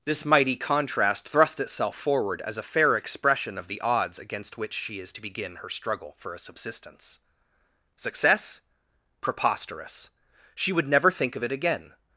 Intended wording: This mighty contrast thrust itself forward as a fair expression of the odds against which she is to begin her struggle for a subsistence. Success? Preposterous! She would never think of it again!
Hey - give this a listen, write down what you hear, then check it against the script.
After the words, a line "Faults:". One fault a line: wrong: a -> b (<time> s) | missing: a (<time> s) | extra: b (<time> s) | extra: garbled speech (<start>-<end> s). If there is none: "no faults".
This mighty contrast thrust itself forward as a fair expression of the odds against which she is to begin her struggle for a subsistence. Success? Preposterous! She would never think of it again!
Faults:
no faults